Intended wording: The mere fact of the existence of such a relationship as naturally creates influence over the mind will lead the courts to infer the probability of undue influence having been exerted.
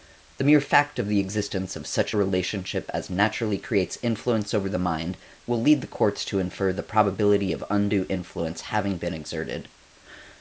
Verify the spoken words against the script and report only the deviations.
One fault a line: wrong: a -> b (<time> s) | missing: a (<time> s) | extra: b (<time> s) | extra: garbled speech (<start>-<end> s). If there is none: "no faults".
no faults